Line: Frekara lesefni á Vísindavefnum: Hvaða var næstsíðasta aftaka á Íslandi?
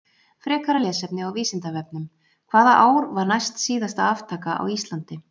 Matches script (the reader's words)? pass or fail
fail